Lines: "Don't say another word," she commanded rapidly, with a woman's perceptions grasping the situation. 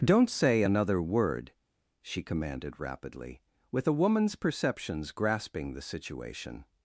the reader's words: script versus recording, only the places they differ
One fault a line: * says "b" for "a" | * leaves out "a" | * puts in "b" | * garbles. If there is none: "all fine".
all fine